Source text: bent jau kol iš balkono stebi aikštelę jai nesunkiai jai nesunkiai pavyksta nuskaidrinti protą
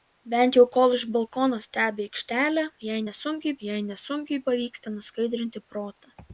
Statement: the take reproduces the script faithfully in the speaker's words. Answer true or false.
true